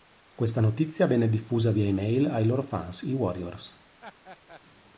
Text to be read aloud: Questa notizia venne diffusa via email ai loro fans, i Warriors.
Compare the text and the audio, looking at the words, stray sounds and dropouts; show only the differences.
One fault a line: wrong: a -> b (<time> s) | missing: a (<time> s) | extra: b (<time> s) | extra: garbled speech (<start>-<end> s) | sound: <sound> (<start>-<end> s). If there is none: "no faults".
sound: laugh (4.0-4.6 s)